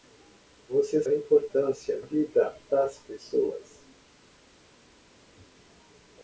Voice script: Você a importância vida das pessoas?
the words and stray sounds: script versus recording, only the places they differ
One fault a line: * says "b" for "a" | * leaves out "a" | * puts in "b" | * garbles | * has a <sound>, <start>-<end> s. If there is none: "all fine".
all fine